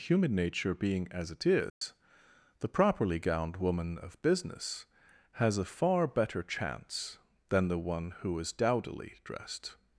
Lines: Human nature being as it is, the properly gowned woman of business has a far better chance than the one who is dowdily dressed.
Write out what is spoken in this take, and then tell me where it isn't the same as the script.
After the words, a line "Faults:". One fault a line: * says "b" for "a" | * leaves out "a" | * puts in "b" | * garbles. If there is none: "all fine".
Human nature being as it is, the properly gowned woman of business has a far better chance than the one who is dowdily dressed.
Faults:
all fine